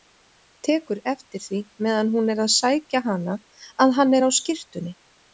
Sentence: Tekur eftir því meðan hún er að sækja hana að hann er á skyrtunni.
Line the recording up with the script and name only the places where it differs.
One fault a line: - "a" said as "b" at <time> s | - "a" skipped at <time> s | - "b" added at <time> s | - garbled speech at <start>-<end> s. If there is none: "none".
none